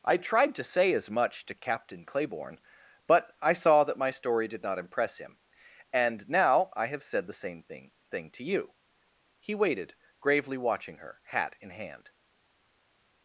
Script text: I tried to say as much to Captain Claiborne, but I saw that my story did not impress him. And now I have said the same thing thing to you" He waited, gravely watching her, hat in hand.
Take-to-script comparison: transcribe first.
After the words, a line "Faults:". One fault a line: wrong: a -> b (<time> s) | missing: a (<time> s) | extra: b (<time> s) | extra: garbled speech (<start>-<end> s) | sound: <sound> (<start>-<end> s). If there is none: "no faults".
I tried to say as much to Captain Claiborne, but I saw that my story did not impress him. And now I have said the same thing thing to you" He waited, gravely watching her, hat in hand.
Faults:
no faults